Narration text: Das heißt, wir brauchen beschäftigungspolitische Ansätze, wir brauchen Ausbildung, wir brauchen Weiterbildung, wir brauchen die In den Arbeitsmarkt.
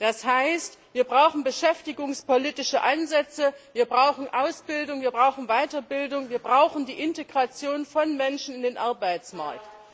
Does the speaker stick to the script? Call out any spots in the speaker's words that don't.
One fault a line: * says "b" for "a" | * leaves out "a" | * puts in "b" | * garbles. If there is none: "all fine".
* puts in "Integration von Menschen"